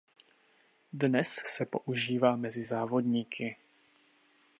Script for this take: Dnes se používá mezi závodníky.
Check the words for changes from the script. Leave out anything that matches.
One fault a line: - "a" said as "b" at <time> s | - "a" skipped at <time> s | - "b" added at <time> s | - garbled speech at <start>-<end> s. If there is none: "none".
none